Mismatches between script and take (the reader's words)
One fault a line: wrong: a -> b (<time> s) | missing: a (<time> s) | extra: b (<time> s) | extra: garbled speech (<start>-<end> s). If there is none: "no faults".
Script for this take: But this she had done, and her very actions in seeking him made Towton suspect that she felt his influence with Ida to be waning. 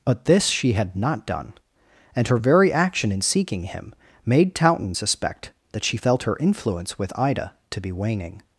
extra: not (0.9 s)
wrong: actions -> action (2.7 s)
wrong: his -> her (6.2 s)